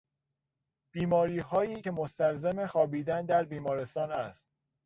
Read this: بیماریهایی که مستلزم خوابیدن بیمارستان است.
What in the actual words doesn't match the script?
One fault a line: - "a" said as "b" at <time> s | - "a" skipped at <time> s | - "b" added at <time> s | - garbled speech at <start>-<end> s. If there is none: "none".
- "در" added at 3.3 s